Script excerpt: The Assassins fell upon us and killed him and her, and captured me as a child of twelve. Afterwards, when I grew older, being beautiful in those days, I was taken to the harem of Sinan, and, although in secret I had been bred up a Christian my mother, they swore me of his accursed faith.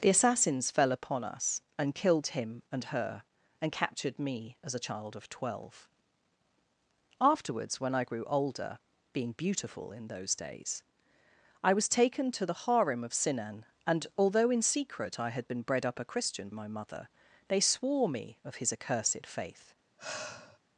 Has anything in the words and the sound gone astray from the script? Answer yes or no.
yes